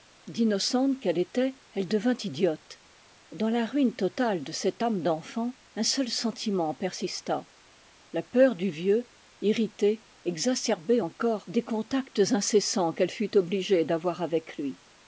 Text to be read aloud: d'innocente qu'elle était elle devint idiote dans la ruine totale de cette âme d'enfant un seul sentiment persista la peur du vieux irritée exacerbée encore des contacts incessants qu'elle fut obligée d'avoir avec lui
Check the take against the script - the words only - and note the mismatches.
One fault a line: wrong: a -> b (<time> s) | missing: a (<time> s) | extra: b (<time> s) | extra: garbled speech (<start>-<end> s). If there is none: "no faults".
no faults